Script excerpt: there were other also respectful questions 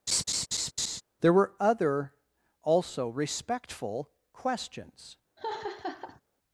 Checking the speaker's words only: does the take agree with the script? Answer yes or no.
yes